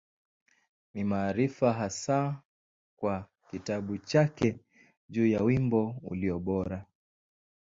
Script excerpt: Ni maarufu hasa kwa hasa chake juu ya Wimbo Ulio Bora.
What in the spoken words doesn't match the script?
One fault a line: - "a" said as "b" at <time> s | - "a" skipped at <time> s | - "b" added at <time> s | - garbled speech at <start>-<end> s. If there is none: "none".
- "hasa" said as "kitabu" at 3.5 s